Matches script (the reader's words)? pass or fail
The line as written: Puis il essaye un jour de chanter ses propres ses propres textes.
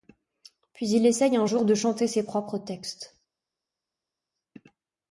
fail